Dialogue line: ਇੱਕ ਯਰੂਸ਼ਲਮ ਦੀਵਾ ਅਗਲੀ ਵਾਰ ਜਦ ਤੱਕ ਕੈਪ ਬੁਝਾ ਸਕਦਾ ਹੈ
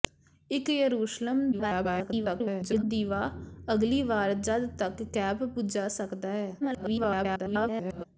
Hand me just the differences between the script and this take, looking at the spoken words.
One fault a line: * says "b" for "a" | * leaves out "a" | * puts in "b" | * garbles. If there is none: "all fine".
* garbles
* garbles